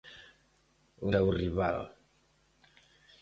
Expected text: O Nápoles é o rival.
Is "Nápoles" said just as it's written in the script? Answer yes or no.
no